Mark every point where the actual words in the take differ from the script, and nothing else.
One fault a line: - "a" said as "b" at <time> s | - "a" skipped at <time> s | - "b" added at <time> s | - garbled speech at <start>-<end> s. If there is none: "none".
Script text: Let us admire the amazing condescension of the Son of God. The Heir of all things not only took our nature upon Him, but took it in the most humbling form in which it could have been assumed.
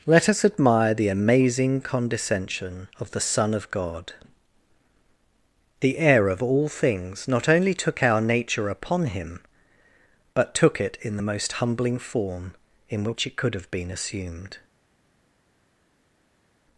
none